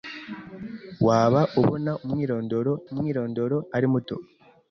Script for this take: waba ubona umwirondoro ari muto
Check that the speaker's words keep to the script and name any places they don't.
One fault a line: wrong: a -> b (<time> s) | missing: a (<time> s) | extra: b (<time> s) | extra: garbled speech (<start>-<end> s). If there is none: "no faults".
extra: umwirondoro (2.9 s)